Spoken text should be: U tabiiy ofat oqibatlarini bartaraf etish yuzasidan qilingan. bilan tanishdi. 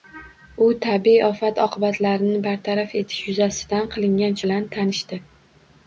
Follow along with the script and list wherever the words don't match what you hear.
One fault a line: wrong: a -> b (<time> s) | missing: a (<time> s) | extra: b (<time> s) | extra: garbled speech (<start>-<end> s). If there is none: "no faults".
no faults